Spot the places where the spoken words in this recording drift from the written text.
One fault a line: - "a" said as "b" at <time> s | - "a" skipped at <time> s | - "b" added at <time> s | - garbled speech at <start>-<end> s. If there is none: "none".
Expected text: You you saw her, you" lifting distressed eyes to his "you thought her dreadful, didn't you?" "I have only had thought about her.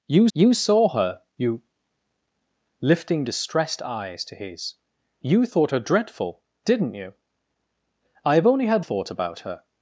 none